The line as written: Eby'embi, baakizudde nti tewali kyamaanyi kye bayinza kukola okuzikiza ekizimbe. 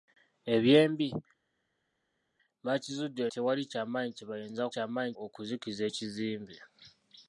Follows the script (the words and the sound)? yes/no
no